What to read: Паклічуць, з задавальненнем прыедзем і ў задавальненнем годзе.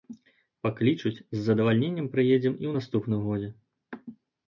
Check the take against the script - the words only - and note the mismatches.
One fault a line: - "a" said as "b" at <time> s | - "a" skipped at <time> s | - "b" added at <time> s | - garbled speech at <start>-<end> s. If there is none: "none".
- "задавальненнем" said as "наступным" at 2.8 s